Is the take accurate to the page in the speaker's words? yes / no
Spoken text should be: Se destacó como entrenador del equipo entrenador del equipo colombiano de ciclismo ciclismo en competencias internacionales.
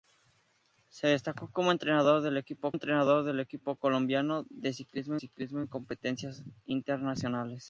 yes